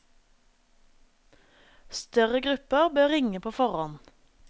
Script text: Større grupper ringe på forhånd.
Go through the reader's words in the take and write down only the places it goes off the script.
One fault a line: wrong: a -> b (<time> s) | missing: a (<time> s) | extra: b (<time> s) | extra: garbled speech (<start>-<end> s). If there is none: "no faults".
extra: bør (3.0 s)